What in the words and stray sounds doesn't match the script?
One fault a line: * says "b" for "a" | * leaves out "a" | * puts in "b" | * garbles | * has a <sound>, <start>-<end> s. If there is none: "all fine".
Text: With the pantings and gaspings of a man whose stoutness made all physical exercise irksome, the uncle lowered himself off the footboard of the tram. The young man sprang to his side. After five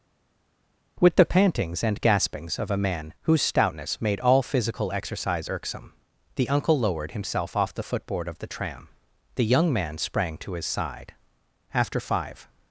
all fine